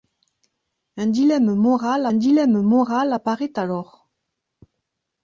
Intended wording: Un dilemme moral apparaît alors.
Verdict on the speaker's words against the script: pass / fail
fail